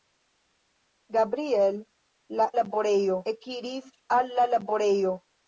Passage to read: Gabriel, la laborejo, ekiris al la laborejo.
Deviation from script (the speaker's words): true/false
false